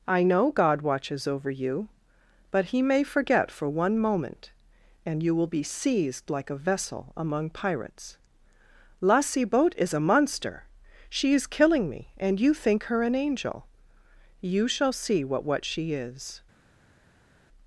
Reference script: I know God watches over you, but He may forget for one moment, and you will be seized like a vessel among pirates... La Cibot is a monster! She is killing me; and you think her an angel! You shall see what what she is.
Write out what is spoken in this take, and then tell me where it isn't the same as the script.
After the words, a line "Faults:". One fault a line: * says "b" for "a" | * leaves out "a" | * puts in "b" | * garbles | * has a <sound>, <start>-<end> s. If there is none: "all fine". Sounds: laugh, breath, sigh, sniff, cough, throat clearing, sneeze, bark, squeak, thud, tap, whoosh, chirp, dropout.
I know God watches over you, but He may forget for one moment, and you will be seized like a vessel among pirates... La Cibot is a monster! She is killing me; and you think her an angel! You shall see what what she is.
Faults:
all fine